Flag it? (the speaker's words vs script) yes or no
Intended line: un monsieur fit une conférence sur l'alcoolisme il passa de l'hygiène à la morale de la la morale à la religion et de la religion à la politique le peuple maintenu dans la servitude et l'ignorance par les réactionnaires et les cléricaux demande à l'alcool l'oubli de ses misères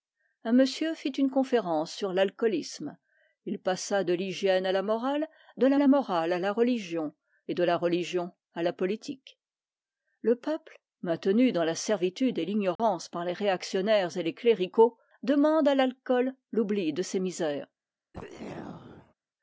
no